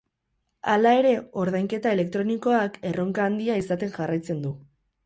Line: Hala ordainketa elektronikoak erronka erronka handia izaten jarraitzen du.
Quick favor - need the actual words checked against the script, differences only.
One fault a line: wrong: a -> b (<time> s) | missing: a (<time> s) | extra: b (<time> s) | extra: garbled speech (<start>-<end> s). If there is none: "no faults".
extra: ere (1.0 s)
missing: erronka (3.3 s)